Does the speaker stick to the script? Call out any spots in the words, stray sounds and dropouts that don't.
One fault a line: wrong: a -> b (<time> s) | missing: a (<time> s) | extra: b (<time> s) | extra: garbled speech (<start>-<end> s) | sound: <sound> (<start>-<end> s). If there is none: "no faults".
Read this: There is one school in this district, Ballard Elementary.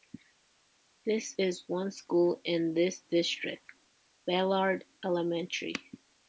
no faults